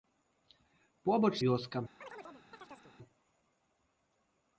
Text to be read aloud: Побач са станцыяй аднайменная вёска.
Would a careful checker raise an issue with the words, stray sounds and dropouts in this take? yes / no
yes